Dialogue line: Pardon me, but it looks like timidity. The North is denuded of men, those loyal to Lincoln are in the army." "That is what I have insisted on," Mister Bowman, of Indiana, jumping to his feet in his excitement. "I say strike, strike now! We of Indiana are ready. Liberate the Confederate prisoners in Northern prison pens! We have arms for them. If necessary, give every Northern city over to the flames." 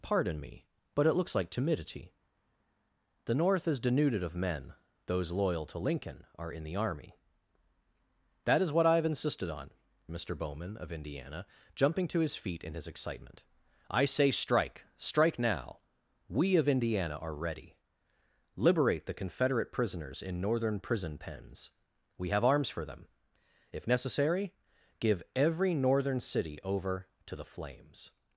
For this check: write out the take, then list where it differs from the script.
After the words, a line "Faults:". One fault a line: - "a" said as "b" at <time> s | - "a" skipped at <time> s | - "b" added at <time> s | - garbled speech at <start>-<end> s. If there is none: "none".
Pardon me, but it looks like timidity. The North is denuded of men, those loyal to Lincoln are in the army." "That is what I have insisted on," Mister Bowman, of Indiana, jumping to his feet in his excitement. "I say strike, strike now! We of Indiana are ready. Liberate the Confederate prisoners in Northern prison pens! We have arms for them. If necessary, give every Northern city over to the flames."
Faults:
none